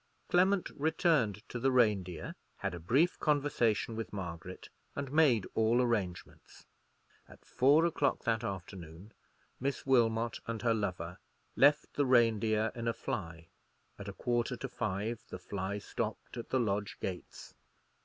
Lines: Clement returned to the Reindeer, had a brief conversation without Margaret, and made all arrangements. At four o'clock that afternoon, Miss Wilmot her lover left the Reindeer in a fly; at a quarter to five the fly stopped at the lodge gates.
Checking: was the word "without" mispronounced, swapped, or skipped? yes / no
yes